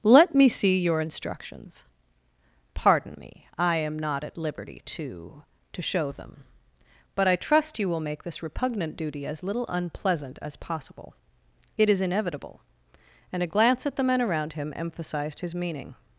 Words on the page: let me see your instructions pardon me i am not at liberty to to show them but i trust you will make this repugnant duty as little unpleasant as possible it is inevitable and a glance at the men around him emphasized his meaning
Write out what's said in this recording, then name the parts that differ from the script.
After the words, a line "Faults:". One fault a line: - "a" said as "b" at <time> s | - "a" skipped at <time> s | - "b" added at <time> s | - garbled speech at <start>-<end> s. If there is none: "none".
let me see your instructions pardon me i am not at liberty to to show them but i trust you will make this repugnant duty as little unpleasant as possible it is inevitable and a glance at the men around him emphasized his meaning
Faults:
none